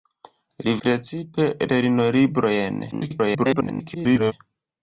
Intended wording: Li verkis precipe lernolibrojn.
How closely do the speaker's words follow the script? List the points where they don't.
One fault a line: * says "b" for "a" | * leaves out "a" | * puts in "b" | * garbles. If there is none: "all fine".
* leaves out "verkis"
* garbles